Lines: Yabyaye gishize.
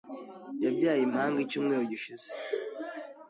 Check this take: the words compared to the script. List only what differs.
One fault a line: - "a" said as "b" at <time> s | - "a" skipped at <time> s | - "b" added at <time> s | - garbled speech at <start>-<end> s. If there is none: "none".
- "impanga icyumweru" added at 1.0 s